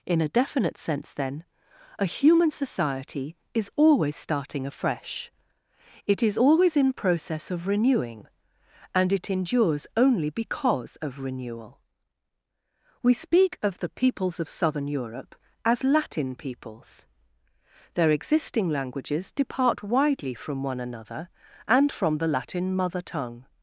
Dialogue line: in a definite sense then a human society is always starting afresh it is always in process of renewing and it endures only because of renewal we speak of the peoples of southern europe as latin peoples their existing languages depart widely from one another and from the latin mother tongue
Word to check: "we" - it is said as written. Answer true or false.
true